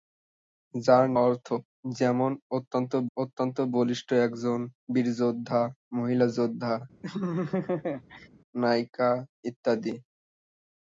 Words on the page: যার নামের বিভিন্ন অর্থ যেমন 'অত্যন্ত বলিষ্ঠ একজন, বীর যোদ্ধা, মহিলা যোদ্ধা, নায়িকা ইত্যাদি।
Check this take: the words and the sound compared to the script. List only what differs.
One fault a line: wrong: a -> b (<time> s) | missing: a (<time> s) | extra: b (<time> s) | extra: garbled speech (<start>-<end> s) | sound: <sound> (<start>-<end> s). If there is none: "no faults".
missing: নামের বিভিন্ন (1.1 s)
extra: অত্যন্ত (3.1 s)
sound: laugh (7.0-8.3 s)